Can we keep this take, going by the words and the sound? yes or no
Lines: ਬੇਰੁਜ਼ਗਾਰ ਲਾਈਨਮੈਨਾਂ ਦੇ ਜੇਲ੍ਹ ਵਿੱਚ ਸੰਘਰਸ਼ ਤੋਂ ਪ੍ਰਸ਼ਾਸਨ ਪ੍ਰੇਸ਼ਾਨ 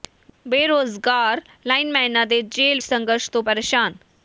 no